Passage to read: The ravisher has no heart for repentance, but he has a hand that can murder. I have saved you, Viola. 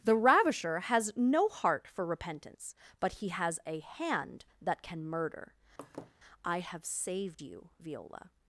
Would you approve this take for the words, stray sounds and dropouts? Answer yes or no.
no